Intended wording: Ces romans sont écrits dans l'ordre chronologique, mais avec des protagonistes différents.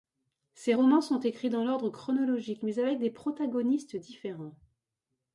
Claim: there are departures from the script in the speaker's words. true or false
false